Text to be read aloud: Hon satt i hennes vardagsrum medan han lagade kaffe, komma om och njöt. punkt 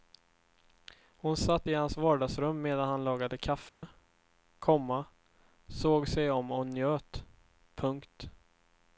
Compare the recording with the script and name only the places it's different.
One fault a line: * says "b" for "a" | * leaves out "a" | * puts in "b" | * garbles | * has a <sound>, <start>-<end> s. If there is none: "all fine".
* says "hans" for "hennes"
* has a dropout, 3.7-3.8 s
* puts in "såg sig"